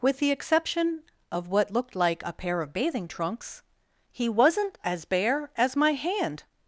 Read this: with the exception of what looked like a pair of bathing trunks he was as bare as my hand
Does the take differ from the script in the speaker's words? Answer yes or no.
yes